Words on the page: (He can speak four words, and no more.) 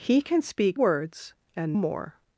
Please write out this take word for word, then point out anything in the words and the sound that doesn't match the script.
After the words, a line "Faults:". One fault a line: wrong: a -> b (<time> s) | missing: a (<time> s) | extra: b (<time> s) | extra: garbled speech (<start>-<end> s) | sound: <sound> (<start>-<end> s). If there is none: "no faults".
(He can speak words, and more.)
Faults:
missing: four (0.8 s)
missing: no (1.8 s)